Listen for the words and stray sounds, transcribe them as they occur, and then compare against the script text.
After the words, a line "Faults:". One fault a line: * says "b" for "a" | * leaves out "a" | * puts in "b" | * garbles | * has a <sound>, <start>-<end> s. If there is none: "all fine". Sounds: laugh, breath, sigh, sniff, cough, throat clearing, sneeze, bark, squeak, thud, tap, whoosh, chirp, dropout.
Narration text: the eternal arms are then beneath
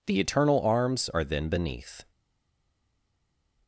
the eternal arms are then beneath
Faults:
all fine